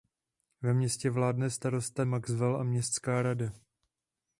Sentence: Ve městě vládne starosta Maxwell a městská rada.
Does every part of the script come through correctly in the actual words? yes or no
yes